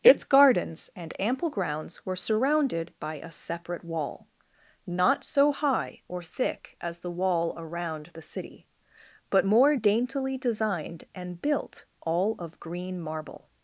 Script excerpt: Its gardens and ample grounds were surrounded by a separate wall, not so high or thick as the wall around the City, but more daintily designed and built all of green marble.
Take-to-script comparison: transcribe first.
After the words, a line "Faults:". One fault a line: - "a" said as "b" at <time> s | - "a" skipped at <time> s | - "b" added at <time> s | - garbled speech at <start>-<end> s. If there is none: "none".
Its gardens and ample grounds were surrounded by a separate wall, not so high or thick as the wall around the City, but more daintily designed and built all of green marble.
Faults:
none